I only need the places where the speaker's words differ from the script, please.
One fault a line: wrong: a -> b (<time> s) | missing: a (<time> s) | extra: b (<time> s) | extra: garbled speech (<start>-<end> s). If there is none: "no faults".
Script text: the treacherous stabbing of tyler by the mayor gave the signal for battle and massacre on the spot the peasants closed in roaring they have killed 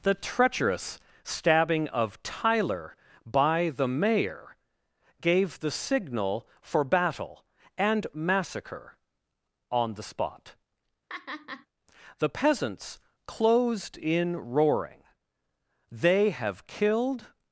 no faults